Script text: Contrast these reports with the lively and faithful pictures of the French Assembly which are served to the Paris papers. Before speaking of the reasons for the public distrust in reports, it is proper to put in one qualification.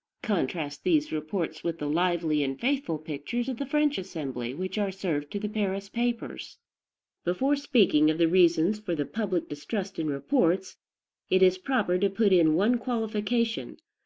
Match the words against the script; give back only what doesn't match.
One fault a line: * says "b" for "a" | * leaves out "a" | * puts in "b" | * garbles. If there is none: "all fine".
all fine